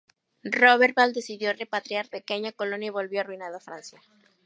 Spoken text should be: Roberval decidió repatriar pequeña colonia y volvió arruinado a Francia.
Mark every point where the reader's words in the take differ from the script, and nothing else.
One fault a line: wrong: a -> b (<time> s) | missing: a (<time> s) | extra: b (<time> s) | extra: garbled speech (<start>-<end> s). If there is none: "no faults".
no faults